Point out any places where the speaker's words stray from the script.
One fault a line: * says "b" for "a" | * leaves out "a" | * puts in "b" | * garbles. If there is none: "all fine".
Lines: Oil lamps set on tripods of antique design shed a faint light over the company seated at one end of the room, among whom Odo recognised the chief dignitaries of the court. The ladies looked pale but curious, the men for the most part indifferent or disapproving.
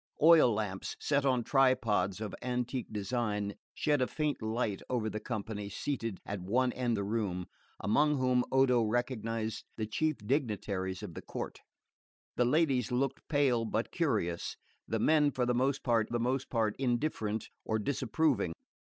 * leaves out "of"
* puts in "the most part"